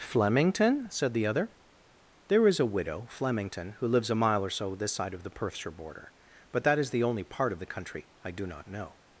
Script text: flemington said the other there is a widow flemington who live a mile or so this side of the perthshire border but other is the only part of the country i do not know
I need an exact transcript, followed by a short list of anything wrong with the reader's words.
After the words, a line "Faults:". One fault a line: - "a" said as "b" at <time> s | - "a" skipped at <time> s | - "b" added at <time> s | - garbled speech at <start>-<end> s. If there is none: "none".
flemington said the other there is a widow flemington who lives a mile or so this side of the perthshire border but that is the only part of the country i do not know
Faults:
- "live" said as "lives" at 3.9 s
- "other" said as "that" at 6.7 s